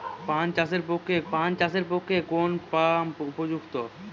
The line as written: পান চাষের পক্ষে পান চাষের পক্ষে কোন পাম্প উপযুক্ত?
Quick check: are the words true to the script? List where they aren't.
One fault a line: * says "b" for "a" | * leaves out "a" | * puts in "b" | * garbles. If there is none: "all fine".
all fine